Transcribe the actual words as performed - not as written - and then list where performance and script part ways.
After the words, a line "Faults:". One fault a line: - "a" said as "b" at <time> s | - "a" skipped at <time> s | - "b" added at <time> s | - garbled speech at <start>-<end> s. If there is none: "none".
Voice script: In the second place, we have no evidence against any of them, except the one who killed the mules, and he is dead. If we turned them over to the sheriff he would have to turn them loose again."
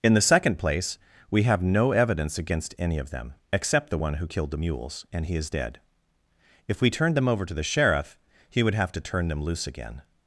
In the second place, we have no evidence against any of them, except the one who killed the mules, and he is dead. If we turned them over to the sheriff he would have to turn them loose again."
Faults:
none